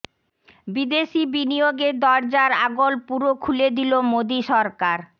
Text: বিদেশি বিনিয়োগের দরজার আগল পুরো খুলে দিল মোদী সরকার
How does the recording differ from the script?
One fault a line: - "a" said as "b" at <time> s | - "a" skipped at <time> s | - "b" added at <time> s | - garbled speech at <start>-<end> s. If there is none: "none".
none